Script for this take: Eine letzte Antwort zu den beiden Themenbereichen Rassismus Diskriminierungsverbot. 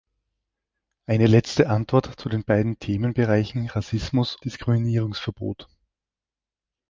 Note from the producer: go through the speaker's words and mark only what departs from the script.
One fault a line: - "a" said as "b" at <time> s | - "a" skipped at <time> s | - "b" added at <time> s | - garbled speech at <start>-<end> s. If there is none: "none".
none